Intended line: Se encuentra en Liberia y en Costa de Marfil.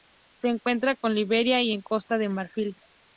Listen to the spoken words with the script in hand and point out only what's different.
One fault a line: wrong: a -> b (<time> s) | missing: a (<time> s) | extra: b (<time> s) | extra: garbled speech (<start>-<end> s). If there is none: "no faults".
no faults